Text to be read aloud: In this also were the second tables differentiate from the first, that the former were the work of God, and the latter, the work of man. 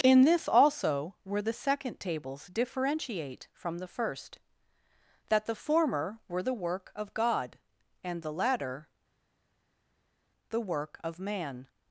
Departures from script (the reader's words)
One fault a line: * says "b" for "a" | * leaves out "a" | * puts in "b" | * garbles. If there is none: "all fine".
all fine